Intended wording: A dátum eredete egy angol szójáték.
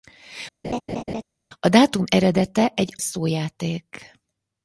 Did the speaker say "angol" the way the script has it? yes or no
no